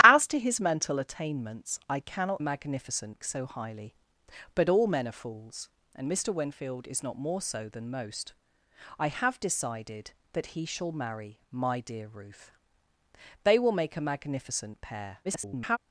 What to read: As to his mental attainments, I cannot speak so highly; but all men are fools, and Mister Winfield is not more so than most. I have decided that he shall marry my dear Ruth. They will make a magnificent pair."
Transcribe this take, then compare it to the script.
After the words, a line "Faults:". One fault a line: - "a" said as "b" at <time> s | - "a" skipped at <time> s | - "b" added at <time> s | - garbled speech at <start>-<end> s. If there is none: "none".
As to his mental attainments, I cannot magnificent so highly; but all men are fools, and Mister Winfield is not more so than most. I have decided that he shall marry my dear Ruth. They will make a magnificent pair." [garbled]
Faults:
- "speak" said as "magnificent" at 2.4 s
- garbled speech at 15.2-15.8 s